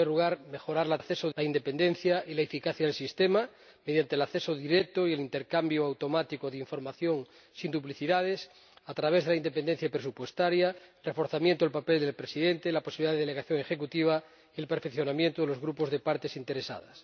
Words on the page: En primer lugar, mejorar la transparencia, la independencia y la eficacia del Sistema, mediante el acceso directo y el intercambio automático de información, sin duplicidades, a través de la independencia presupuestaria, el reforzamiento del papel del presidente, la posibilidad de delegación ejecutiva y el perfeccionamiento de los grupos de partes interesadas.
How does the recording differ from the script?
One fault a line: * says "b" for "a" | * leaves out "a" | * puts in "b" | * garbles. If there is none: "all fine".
* says "acceso" for "transparencia"